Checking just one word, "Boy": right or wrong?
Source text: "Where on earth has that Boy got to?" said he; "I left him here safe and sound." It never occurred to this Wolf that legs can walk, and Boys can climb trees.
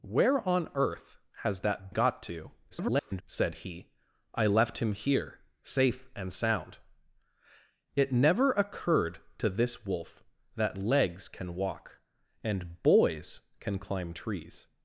wrong